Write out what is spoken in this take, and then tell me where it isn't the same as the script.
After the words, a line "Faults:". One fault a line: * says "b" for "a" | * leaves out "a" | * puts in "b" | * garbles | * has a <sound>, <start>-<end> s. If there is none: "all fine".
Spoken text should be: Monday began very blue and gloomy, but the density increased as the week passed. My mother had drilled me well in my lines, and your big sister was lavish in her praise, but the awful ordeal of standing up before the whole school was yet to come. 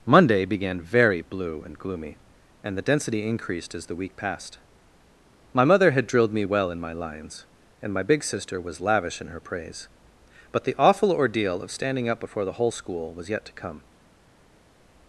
Monday began very blue and gloomy, and the density increased as the week passed. My mother had drilled me well in my lines, and my big sister was lavish in her praise, but the awful ordeal of standing up before the whole school was yet to come.
Faults:
* says "and" for "but"
* says "my" for "your"